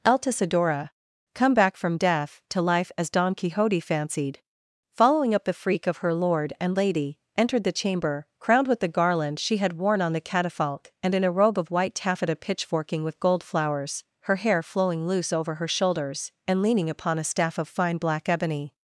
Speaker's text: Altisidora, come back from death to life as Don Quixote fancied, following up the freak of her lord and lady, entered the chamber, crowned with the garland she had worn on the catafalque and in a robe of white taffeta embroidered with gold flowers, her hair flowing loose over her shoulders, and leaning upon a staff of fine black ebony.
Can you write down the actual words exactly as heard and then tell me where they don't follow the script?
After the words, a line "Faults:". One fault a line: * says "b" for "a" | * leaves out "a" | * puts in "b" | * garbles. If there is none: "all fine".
Altisidora, come back from death to life as Don Quixote fancied, following up the freak of her lord and lady, entered the chamber, crowned with the garland she had worn on the catafalque and in a robe of white taffeta pitchforking with gold flowers, her hair flowing loose over her shoulders, and leaning upon a staff of fine black ebony.
Faults:
* says "pitchforking" for "embroidered"